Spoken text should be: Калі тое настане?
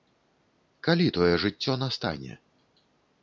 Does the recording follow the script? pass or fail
fail